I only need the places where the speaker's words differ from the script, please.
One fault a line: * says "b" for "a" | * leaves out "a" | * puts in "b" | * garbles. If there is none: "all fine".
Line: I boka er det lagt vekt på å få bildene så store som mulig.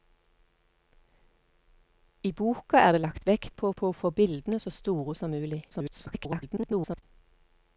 * puts in "på"
* garbles